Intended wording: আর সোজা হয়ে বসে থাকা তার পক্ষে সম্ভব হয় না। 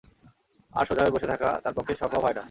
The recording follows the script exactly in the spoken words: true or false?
true